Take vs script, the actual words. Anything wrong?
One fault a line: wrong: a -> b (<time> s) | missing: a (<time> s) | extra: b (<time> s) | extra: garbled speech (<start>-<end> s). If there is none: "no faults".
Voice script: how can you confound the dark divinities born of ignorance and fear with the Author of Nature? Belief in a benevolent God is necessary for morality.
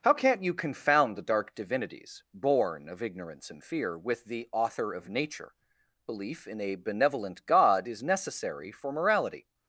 wrong: can -> can't (0.1 s)